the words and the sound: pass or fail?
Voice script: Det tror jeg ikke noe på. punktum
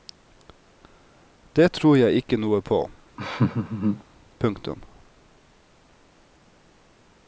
fail